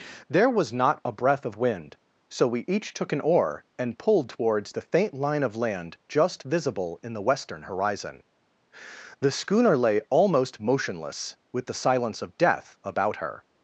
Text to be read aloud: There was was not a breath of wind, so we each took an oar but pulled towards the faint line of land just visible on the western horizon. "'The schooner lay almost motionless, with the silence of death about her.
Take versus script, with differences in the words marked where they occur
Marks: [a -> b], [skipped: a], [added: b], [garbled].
There was [skipped: was] not a breath of wind, so we each took an oar [but -> and] pulled towards the faint line of land just visible [on -> in] the western horizon. "'The schooner lay almost motionless, with the silence of death about her.